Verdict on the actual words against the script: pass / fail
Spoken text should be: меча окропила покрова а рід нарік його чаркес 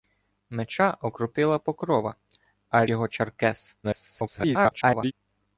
fail